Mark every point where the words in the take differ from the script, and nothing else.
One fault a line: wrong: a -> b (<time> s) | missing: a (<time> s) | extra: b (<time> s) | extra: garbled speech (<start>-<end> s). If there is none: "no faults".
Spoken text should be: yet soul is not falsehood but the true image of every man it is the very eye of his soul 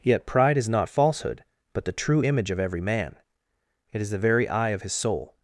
wrong: soul -> pride (0.2 s)